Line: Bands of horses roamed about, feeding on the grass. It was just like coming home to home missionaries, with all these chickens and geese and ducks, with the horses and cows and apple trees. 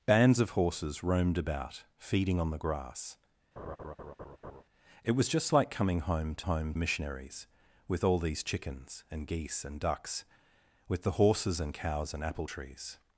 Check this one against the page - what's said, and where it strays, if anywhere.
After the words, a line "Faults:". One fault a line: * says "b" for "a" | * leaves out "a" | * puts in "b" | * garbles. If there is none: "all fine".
Bands of horses roamed about, feeding on the grass. It was just like coming home to home missionaries, with all these chickens and geese and ducks, with the horses and cows and apple trees.
Faults:
all fine